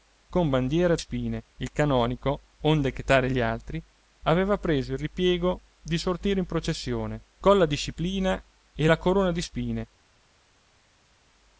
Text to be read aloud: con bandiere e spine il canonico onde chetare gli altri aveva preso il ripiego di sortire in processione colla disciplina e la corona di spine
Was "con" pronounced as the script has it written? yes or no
yes